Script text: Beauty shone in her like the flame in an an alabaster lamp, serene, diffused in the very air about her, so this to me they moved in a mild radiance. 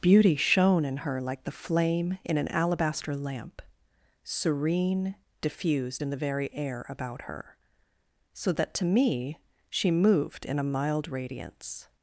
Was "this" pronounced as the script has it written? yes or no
no